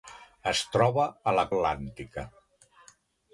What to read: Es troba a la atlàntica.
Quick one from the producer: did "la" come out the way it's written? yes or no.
yes